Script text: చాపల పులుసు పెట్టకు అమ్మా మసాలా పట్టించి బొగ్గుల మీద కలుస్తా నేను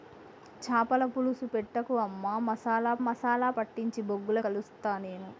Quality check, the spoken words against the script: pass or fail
fail